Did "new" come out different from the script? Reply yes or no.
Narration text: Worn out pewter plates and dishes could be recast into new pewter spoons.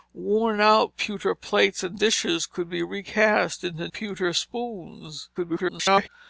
yes